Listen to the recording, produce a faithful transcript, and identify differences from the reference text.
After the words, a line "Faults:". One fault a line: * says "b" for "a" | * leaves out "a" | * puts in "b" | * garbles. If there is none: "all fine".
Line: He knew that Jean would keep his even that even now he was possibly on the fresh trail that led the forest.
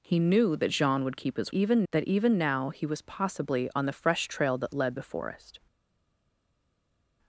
He knew that Jean would keep his even that even now he was possibly on the fresh trail that led the forest.
Faults:
all fine